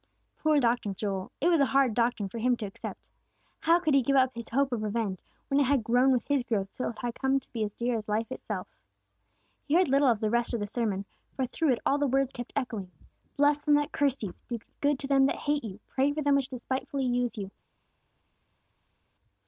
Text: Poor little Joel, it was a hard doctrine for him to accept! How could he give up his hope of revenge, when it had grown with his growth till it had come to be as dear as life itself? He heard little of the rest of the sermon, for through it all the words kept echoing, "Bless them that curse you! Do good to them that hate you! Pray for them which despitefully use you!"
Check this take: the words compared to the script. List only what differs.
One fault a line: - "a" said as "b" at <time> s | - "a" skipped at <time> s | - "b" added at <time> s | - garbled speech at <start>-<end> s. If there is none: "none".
- "little" said as "doctrine" at 0.6 s